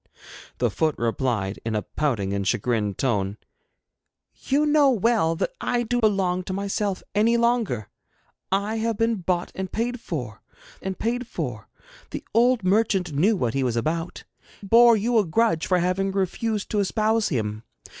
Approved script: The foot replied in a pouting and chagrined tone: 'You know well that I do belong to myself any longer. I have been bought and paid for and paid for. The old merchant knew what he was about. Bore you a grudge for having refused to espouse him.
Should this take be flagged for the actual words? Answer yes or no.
no